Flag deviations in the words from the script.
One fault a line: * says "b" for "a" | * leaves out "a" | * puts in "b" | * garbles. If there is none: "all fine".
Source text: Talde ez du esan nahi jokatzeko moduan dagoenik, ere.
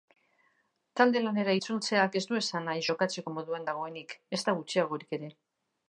* puts in "lanera itzultzeak"
* puts in "ezta gutxiagorik"